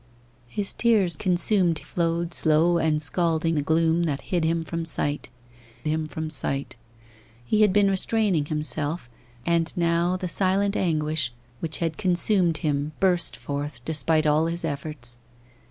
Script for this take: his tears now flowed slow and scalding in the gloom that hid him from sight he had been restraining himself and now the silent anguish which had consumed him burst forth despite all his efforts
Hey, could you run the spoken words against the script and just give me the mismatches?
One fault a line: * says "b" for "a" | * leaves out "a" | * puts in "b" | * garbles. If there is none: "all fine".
* says "consumed" for "now"
* leaves out "in"
* puts in "him from sight"